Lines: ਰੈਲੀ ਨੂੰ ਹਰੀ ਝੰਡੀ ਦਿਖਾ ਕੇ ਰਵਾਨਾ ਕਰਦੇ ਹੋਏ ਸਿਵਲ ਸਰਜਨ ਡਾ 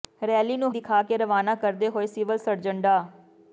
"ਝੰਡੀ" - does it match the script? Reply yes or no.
no